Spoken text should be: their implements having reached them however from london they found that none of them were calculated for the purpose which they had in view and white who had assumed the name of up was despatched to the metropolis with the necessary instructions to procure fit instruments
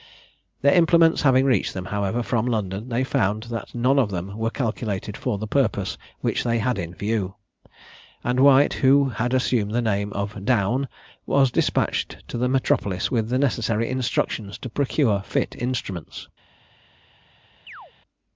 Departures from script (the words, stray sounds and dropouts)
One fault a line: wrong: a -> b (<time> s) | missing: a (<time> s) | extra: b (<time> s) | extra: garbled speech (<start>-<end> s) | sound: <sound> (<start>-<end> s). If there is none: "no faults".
wrong: up -> down (10.4 s)
sound: chirp (17.7-17.9 s)